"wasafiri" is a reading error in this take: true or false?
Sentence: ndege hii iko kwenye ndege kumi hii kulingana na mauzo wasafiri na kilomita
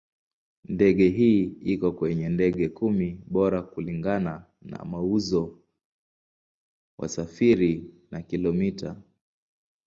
false